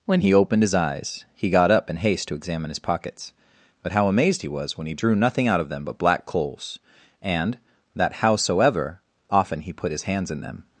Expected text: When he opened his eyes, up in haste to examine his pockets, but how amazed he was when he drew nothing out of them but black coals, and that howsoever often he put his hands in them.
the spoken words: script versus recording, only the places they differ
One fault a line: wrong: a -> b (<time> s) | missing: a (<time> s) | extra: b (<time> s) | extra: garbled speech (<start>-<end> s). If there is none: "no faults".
extra: he got (1.4 s)